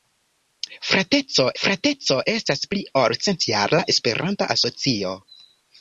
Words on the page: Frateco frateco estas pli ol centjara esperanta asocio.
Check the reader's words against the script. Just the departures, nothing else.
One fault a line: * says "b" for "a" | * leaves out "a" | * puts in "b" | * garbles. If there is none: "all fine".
all fine